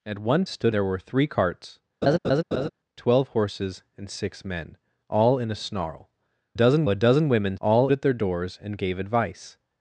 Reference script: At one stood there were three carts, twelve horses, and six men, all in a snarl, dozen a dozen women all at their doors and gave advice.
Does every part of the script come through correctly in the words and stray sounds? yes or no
no